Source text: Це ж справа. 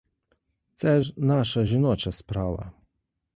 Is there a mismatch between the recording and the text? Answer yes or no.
yes